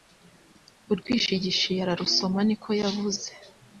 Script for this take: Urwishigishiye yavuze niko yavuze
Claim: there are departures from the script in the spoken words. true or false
true